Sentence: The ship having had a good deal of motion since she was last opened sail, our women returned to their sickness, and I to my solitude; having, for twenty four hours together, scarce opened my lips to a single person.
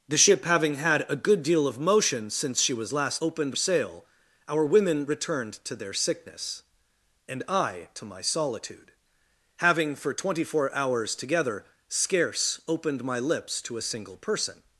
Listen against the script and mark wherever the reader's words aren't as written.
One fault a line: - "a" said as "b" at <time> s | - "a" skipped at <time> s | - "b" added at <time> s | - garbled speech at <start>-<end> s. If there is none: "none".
none